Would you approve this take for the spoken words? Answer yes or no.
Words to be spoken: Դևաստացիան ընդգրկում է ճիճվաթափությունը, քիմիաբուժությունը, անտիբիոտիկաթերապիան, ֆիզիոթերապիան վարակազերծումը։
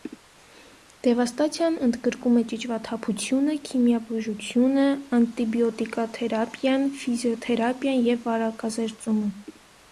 no